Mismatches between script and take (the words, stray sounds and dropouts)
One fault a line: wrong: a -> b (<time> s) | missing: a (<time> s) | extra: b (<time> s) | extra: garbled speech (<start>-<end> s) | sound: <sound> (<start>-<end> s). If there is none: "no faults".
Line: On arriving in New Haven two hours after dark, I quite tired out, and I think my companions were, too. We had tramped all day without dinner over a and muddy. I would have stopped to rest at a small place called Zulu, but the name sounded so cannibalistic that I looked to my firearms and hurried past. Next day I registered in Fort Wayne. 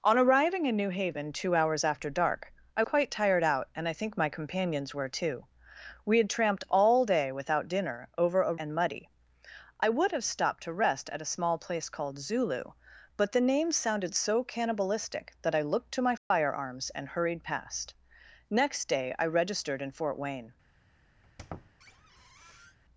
sound: dropout (16.2-16.3 s)
sound: squeak (21.2-22.8 s)